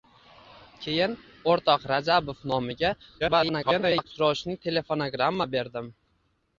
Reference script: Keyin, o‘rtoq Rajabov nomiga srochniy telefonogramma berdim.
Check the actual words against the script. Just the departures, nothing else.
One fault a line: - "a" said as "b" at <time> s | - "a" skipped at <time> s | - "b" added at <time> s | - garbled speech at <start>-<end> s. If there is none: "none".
- garbled speech at 3.2-4.0 s